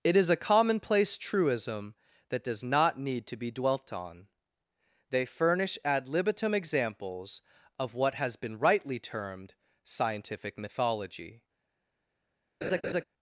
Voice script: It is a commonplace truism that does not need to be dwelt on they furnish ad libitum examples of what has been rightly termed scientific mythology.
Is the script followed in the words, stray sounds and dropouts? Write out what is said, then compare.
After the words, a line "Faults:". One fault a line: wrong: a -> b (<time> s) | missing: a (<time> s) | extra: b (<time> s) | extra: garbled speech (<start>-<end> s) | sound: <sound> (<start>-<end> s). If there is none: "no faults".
It is a commonplace truism that does not need to be dwelt on they furnish ad libitum examples of what has been rightly termed scientific mythology.
Faults:
sound: laugh (12.6-13.0 s)